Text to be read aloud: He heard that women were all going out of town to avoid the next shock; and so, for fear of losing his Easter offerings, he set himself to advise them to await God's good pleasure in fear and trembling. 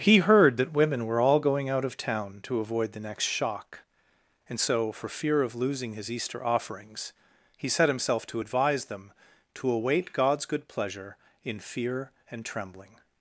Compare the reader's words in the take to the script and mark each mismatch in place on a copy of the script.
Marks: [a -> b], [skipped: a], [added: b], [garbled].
He heard that women were all going out of town to avoid the next shock; and so, for fear of losing his Easter offerings, he set himself to advise them to await God's good pleasure in fear and trembling.